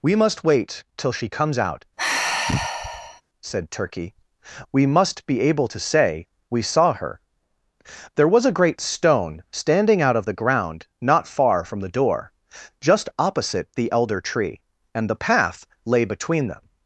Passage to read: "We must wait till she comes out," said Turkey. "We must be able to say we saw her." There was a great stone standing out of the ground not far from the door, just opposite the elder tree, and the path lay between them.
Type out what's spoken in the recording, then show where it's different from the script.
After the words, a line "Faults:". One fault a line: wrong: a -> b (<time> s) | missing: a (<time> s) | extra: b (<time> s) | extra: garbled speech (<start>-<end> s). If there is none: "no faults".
"We must wait till she comes out," said Turkey. "We must be able to say we saw her." There was a great stone standing out of the ground not far from the door, just opposite the elder tree, and the path lay between them.
Faults:
no faults